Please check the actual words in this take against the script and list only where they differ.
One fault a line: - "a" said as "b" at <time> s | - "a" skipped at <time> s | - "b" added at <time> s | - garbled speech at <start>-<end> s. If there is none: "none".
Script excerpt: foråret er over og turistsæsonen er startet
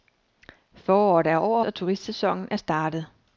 none